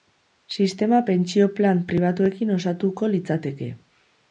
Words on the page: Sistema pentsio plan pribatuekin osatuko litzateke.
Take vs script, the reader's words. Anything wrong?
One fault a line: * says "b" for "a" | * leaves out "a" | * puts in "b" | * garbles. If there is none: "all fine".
all fine